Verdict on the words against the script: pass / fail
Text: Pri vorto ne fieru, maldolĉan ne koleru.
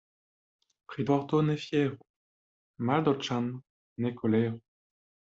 pass